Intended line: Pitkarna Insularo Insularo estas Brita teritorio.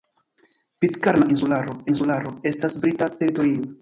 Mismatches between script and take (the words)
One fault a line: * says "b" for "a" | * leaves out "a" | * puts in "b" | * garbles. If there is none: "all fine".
all fine